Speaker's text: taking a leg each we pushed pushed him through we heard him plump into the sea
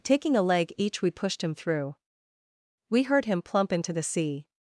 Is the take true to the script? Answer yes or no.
no